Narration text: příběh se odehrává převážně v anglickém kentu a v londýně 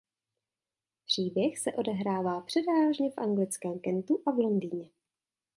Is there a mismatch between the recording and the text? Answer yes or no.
no